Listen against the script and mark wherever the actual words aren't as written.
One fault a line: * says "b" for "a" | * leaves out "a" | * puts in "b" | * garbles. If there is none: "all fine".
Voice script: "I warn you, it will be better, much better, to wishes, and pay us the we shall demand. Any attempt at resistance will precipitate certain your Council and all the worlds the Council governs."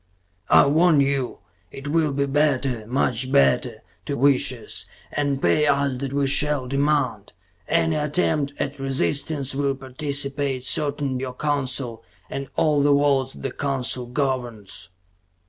all fine